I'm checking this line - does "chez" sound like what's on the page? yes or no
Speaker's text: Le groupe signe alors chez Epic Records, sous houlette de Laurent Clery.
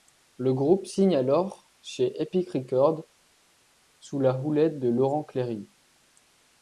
yes